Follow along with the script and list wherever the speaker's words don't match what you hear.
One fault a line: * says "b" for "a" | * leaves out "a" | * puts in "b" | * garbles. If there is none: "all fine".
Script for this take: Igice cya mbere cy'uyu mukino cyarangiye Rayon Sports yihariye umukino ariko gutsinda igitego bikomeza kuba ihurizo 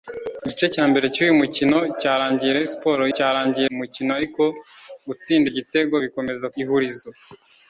* says "cyarangiye" for "yihariye"
* leaves out "kuba"